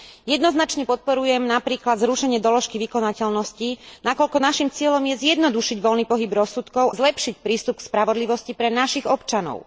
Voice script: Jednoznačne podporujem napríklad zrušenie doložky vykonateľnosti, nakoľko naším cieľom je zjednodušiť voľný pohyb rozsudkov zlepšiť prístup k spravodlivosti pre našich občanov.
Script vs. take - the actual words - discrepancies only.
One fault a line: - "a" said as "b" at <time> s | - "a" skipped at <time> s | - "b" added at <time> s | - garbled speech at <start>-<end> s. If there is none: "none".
none